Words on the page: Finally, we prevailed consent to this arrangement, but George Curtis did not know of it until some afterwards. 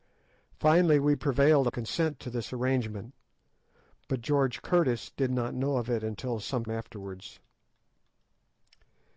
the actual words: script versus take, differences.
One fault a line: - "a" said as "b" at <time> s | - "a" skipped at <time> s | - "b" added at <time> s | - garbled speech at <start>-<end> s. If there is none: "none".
none